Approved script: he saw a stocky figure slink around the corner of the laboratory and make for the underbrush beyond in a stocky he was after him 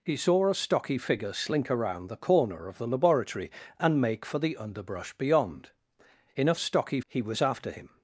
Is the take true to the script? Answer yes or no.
yes